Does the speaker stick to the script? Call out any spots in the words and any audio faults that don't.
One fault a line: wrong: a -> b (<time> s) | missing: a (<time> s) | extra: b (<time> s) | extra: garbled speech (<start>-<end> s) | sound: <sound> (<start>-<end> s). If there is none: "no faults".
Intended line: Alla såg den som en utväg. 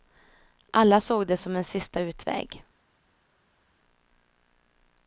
wrong: den -> det (1.3 s)
extra: sista (1.6 s)